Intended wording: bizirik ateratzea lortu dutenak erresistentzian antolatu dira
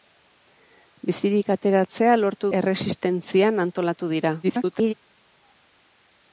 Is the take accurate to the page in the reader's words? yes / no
no